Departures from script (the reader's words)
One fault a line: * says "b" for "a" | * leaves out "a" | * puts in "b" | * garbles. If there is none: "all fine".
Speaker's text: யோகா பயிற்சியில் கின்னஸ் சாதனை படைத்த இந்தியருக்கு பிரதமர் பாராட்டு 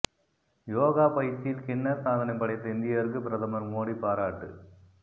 * puts in "மோடி"